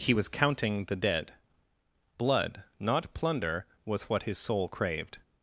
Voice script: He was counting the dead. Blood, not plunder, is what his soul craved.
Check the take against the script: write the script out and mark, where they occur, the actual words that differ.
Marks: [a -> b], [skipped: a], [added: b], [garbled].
He was counting the dead. Blood, not plunder, [is -> was] what his soul craved.